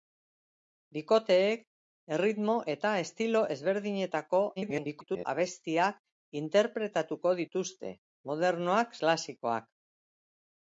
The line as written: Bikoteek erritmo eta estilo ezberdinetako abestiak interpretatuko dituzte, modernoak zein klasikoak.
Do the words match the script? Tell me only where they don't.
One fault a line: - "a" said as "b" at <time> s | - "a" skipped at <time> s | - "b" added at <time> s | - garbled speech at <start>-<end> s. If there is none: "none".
- garbled speech at 4.6-5.3 s
- "zein" skipped at 9.0 s